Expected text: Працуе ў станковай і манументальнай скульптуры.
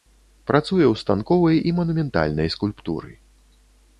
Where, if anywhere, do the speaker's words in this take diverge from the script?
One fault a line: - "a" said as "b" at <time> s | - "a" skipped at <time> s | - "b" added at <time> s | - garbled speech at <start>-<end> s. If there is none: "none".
none